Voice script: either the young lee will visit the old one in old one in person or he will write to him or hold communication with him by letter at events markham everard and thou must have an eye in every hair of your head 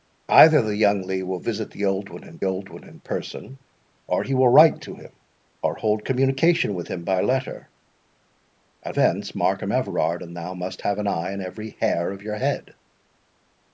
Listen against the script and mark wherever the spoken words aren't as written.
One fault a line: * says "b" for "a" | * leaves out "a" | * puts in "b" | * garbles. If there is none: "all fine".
all fine